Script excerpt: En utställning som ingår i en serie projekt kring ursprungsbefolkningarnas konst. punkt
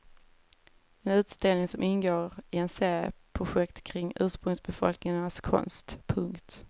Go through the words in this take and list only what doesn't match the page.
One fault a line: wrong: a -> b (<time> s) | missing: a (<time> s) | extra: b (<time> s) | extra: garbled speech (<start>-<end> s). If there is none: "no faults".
no faults